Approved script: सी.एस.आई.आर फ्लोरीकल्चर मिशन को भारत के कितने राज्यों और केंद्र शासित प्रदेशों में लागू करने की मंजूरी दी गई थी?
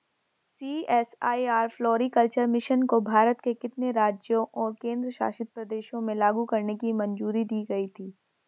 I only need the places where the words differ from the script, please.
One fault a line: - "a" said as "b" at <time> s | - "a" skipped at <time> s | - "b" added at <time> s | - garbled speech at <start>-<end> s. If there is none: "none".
none